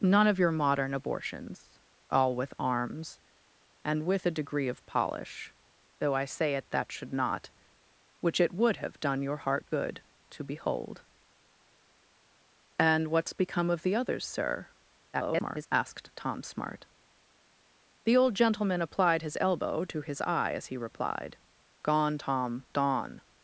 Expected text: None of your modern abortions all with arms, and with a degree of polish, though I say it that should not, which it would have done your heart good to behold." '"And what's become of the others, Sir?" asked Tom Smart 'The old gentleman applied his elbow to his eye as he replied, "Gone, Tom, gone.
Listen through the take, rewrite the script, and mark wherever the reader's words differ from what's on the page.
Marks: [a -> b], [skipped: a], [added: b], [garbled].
None of your modern abortions all with arms, and with a degree of polish, though I say it that should not, which it would have done your heart good to behold." '"And what's become of the others, Sir?" [garbled] asked Tom Smart 'The old gentleman applied his elbow to his eye as he replied, "Gone, Tom, gone.